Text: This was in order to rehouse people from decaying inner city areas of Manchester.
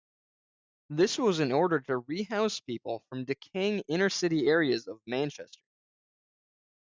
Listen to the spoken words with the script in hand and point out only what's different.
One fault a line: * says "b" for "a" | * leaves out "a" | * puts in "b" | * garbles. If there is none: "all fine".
all fine